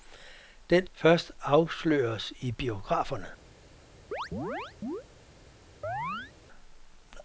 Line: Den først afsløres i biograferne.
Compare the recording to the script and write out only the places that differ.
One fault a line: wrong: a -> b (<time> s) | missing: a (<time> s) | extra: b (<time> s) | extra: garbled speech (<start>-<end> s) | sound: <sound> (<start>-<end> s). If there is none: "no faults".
sound: chirp (4.1-5.0 s)
sound: chirp (5.8-6.3 s)